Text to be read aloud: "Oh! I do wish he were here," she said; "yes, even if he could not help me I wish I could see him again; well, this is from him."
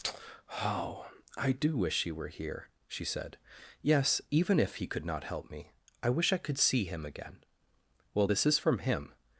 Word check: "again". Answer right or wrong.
right